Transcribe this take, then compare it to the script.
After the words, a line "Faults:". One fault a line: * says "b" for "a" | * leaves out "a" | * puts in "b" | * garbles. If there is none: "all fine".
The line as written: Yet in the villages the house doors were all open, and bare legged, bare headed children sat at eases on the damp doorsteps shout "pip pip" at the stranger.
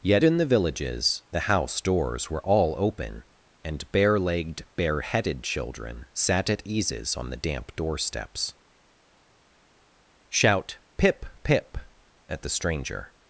Yet in the villages the house doors were all open, and bare legged, bare headed children sat at eases on the damp doorsteps shout "pip pip" at the stranger.
Faults:
all fine